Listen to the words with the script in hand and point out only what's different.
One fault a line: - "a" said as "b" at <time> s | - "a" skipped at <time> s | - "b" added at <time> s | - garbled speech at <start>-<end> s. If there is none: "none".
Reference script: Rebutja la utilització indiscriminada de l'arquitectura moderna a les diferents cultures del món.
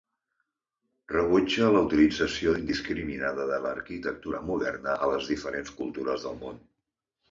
none